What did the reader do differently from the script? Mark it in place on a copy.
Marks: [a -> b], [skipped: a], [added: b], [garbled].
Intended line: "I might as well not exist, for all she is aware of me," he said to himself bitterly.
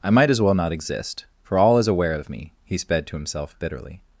"I might as well not exist, for all [skipped: she] is aware of me," he [said -> sped] to himself bitterly.